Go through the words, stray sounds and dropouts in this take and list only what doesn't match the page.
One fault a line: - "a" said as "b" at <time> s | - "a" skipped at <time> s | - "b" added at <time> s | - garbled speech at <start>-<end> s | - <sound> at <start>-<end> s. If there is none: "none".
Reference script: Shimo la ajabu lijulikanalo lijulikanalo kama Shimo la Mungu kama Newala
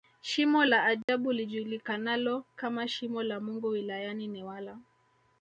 - dropout at 1.0-1.1 s
- "lijulikanalo" skipped at 2.4 s
- "kama" said as "wilayani" at 3.7 s